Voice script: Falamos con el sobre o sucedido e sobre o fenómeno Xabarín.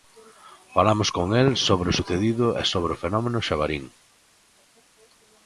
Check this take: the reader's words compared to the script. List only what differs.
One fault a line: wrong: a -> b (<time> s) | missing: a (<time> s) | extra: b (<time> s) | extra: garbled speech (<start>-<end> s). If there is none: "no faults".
no faults